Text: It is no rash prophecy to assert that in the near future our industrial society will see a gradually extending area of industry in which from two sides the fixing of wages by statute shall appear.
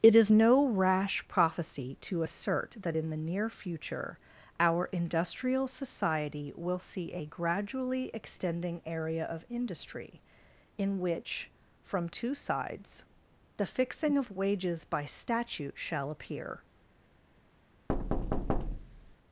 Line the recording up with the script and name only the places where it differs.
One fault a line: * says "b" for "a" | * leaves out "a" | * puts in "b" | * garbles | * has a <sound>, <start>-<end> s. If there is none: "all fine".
* has a thud, 17.9-19.2 s